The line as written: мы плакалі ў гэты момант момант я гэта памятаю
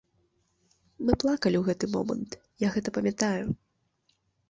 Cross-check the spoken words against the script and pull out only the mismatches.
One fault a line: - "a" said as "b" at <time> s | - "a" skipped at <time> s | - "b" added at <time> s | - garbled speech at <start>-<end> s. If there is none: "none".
- "момант" skipped at 2.3 s